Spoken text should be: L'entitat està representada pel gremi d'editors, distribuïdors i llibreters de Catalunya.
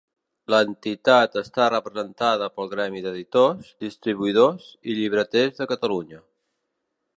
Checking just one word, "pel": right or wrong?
right